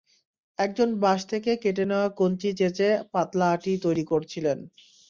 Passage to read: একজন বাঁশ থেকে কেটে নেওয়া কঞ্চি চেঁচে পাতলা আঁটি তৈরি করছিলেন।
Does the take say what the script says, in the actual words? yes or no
yes